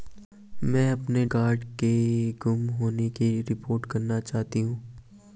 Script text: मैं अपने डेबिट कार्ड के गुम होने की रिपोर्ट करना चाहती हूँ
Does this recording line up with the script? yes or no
no